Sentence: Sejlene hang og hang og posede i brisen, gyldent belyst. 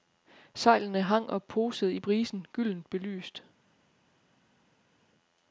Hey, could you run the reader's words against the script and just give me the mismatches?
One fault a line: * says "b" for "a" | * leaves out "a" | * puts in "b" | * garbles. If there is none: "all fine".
* leaves out "hang og"